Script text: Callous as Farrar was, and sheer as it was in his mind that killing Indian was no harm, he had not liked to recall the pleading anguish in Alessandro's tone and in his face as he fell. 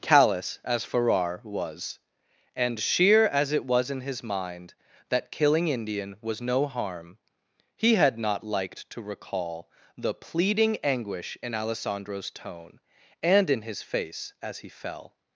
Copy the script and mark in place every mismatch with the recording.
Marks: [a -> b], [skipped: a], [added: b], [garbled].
Callous as Farrar was, and sheer as it was in his mind that killing Indian was no harm, he had not liked to recall the pleading anguish in Alessandro's tone and in his face as he fell.